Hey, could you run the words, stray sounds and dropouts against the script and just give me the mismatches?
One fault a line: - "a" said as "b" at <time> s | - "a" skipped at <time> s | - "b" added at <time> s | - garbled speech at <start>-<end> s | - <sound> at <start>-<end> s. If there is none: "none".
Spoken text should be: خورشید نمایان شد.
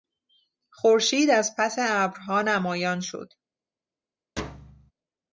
- "از پس ابرها" added at 1.3 s
- thud at 4.4-4.9 s